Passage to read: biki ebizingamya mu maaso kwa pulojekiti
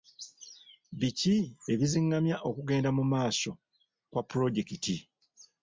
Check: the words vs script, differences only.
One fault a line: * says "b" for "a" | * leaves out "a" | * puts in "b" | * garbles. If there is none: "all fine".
* puts in "okugenda"